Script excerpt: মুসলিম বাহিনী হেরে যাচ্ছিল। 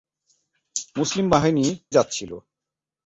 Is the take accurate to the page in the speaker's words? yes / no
no